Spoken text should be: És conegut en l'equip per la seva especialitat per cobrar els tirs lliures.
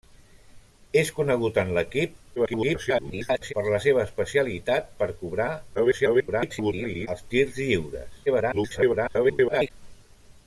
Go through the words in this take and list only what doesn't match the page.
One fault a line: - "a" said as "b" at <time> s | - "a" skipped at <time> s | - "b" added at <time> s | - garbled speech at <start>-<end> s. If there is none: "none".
- garbled speech at 2.4-3.5 s
- garbled speech at 5.7-7.1 s
- garbled speech at 8.3-9.7 s